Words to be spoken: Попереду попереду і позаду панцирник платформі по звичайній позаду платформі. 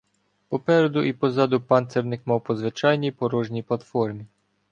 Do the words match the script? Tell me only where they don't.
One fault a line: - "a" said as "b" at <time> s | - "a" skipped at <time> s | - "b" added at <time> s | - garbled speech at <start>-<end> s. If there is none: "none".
- "попереду" skipped at 1.0 s
- "платформі" said as "мав" at 2.3 s
- "позаду" said as "порожній" at 3.1 s